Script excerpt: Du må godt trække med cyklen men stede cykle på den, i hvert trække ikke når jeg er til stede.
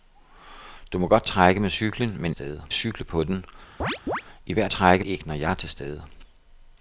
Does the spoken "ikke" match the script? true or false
true